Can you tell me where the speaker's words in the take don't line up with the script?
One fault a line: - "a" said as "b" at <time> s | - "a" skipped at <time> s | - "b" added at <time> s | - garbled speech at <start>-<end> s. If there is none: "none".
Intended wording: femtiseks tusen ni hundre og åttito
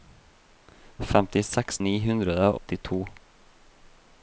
- "tusen" skipped at 1.8 s
- "og" skipped at 2.4 s